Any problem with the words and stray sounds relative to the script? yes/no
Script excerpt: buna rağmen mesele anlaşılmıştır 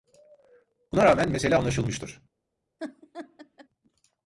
yes